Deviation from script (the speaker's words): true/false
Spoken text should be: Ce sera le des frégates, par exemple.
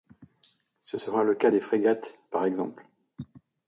true